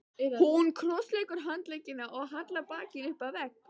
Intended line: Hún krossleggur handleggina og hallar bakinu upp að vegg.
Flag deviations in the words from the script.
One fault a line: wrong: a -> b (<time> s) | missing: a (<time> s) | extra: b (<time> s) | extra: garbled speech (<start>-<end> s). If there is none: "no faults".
no faults